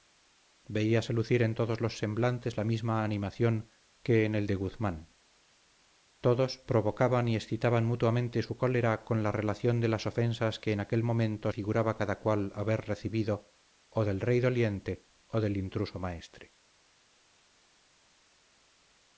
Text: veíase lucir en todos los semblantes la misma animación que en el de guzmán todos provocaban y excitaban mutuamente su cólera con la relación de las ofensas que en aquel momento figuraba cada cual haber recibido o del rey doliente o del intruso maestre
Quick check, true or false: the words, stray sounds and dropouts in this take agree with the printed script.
true